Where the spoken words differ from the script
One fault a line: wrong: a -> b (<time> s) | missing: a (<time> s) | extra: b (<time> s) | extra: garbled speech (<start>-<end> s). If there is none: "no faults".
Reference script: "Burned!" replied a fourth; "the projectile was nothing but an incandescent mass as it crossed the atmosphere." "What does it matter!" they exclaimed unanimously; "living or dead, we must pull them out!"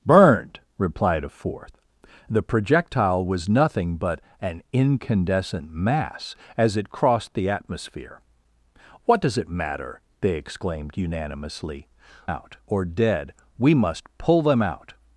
wrong: living -> out (12.2 s)